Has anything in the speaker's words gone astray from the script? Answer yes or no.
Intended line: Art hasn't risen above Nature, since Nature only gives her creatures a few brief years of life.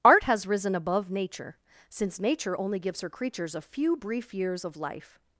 yes